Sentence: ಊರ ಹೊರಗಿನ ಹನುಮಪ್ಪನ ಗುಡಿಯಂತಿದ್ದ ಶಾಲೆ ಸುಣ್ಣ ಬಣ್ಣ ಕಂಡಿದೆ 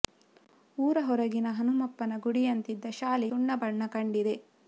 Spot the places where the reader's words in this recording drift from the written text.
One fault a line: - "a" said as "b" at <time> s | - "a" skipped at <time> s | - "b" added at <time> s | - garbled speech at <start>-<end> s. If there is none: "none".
none